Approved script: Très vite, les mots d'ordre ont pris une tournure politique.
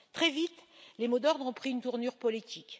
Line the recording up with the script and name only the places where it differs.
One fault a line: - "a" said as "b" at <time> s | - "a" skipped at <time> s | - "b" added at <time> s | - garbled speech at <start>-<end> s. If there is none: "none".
none